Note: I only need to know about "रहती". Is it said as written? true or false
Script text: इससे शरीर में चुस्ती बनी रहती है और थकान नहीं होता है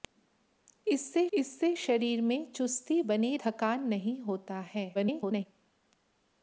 false